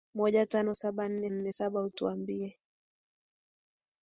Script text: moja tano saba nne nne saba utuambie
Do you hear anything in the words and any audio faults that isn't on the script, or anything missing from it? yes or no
no